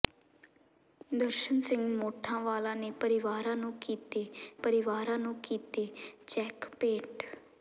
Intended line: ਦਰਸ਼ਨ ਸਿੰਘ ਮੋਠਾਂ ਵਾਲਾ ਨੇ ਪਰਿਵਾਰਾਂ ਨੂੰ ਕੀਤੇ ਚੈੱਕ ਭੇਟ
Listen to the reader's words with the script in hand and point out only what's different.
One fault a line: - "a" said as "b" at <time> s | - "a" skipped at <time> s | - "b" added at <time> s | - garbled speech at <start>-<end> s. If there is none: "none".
- "ਪਰਿਵਾਰਾਂ ਨੂੰ ਕੀਤੇ" added at 4.6 s